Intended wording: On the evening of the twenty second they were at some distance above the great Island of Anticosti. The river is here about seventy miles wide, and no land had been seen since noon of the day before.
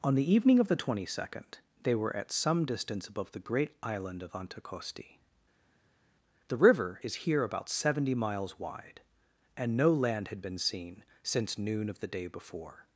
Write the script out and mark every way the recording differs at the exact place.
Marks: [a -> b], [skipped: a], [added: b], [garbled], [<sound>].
On the evening of the twenty second they were at some distance above the great Island of Anticosti. The river is here about seventy miles wide, and no land had been seen since noon of the day before.